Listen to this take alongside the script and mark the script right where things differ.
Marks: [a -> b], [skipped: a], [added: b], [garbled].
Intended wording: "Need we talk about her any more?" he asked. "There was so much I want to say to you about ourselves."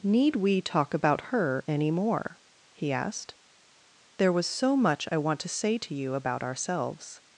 "Need we talk about her any more?" he asked. "There was so much I want to say to you about ourselves."